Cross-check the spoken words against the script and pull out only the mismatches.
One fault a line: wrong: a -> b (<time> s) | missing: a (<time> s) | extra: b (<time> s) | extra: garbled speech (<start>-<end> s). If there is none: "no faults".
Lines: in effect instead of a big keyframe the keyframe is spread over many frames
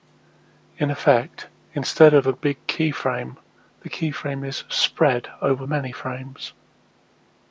no faults